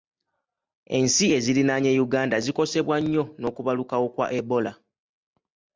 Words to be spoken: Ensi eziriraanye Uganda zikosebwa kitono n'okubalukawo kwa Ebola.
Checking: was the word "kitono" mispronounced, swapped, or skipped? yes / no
yes